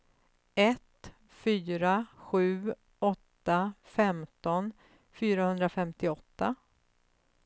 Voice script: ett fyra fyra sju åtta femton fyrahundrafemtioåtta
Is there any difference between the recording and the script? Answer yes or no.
yes